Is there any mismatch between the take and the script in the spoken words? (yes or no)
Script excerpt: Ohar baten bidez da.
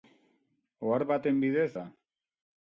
no